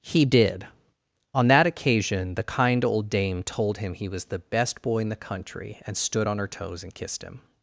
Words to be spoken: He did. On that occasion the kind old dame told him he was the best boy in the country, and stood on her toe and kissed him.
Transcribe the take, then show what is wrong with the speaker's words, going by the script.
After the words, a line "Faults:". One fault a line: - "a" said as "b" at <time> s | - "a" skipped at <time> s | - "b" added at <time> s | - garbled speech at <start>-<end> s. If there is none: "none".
He did. On that occasion the kind old dame told him he was the best boy in the country, and stood on her toes and kissed him.
Faults:
- "toe" said as "toes" at 6.5 s